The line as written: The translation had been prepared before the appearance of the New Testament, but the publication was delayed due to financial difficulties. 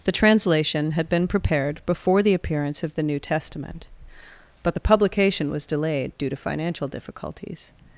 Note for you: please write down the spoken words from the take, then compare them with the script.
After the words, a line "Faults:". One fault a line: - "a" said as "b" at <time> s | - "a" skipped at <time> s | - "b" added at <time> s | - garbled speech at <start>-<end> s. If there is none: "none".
The translation had been prepared before the appearance of the New Testament, but the publication was delayed due to financial difficulties.
Faults:
none